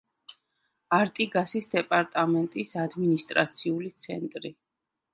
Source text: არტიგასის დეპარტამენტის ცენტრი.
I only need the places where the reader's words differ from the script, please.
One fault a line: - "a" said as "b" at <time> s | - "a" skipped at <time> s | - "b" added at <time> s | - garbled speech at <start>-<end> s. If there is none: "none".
- "ადმინისტრაციული" added at 2.9 s